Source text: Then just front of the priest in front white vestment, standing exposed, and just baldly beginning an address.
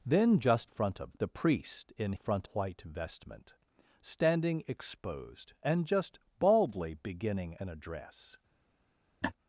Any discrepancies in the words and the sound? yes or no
yes